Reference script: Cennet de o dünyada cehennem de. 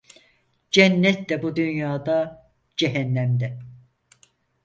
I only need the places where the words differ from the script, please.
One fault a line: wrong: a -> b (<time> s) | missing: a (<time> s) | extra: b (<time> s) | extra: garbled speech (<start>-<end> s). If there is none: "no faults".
wrong: o -> bu (1.4 s)